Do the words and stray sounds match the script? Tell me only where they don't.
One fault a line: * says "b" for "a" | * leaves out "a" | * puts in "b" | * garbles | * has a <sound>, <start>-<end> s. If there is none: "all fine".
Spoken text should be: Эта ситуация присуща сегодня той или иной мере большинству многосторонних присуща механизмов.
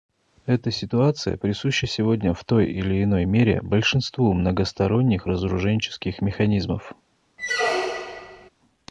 * puts in "в"
* says "разоруженческих" for "присуща"
* has a squeak, 7.4-8.5 s